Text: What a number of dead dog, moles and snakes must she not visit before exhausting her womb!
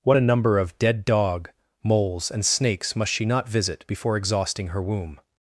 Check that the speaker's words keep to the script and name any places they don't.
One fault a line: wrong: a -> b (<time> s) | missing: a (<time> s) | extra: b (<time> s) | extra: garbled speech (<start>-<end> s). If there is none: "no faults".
no faults